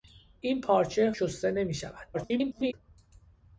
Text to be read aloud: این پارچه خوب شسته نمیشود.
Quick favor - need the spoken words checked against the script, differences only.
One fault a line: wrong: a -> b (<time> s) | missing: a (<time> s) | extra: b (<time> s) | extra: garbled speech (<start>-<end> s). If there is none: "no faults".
missing: خوب (1.1 s)
extra: garbled speech (2.1-2.7 s)